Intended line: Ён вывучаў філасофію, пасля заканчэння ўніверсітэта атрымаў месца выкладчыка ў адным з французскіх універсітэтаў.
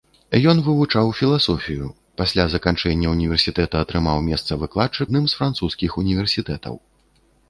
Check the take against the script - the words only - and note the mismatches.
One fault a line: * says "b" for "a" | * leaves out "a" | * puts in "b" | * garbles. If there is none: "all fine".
* leaves out "ў"